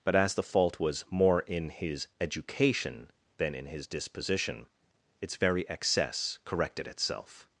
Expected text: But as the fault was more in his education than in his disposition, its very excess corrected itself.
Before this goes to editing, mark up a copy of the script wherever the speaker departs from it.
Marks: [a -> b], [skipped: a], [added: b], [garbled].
But as the fault was more in his education than in his disposition, its very excess corrected itself.